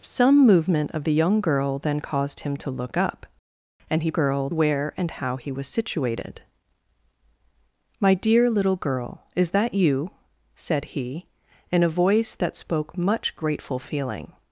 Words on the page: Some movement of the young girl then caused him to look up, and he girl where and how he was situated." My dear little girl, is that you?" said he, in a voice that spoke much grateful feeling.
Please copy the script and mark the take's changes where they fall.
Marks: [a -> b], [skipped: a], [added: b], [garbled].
Some movement of the young girl then caused him to look up, and he girl where and how he was situated." My dear little girl, is that you?" said he, in a voice that spoke much grateful feeling.